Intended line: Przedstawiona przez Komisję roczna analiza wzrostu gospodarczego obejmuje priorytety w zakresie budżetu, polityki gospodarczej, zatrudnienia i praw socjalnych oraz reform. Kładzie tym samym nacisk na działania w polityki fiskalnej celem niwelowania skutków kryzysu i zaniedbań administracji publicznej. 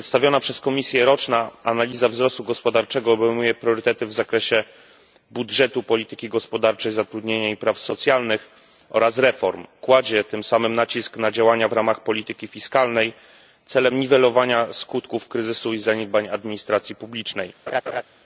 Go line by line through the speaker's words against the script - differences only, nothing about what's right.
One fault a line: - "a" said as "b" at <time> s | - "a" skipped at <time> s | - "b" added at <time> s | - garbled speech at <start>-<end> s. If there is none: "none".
- "ramach" added at 11.7 s